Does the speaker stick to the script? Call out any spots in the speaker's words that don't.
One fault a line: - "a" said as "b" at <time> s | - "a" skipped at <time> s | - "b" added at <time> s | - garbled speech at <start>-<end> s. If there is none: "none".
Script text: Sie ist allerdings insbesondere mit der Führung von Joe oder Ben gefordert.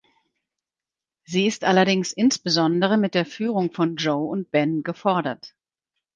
- "oder" said as "und" at 4.3 s